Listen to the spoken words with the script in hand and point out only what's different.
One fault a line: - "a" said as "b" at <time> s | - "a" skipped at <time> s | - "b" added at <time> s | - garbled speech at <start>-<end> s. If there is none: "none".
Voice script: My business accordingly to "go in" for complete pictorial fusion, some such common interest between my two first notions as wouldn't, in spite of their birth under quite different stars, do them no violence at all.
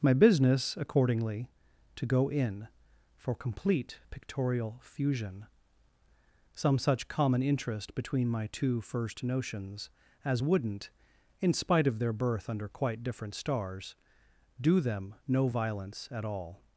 none